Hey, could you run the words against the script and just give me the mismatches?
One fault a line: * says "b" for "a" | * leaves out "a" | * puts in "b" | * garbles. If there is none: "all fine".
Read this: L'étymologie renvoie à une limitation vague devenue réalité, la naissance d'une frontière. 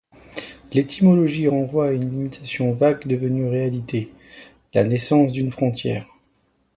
all fine